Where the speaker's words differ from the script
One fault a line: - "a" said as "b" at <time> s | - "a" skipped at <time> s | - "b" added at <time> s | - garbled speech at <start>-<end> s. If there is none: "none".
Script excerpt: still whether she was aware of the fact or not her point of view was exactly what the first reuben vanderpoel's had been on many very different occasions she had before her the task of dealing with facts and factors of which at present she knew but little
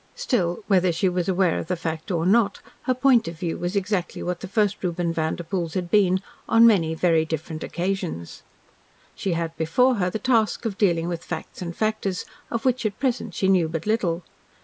none